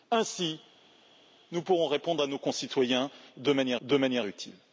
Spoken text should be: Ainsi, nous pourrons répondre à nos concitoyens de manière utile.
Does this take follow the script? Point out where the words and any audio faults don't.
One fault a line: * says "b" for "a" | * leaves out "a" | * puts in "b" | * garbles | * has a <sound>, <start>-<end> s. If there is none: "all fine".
* puts in "de manière"